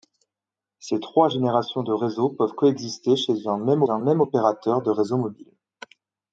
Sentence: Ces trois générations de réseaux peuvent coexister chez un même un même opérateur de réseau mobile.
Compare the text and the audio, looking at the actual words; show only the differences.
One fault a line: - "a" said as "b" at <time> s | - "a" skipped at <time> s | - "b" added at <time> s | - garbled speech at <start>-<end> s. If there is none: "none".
none